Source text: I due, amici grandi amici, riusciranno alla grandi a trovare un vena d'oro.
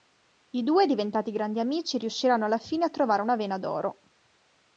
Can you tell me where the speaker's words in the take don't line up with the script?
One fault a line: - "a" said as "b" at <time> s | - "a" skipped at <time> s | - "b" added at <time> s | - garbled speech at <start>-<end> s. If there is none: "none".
- "amici" said as "diventati" at 0.9 s
- "grandi" said as "fine" at 2.6 s
- "un" said as "una" at 3.2 s